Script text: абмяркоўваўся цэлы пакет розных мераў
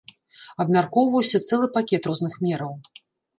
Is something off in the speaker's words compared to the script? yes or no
no